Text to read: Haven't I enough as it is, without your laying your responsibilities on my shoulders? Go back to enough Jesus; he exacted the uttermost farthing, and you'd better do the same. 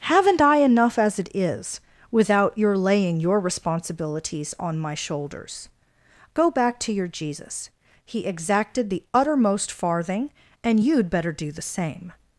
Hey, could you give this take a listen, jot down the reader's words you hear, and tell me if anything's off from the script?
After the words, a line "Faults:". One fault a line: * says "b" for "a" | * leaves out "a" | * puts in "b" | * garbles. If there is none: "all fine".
Haven't I enough as it is, without your laying your responsibilities on my shoulders? Go back to your Jesus; he exacted the uttermost farthing, and you'd better do the same.
Faults:
* says "your" for "enough"